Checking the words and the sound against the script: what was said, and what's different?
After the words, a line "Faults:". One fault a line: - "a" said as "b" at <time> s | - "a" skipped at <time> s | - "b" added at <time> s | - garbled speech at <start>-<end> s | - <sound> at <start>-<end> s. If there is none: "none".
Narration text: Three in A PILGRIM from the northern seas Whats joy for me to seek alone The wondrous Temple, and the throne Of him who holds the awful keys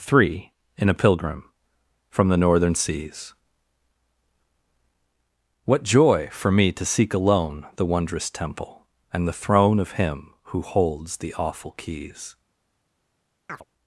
Three in A PILGRIM from the northern seas What joy for me to seek alone The wondrous Temple, and the throne Of him who holds the awful keys
Faults:
- "Whats" said as "What" at 5.7 s
- chirp at 13.5-13.6 s